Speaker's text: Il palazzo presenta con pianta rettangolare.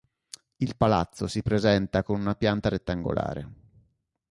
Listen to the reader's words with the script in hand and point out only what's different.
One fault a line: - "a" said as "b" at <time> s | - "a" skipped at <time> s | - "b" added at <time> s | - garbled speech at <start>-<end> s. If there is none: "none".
- "si" added at 1.3 s
- "una" added at 2.2 s